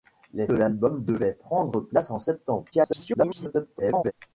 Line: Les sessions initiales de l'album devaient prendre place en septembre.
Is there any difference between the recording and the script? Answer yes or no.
yes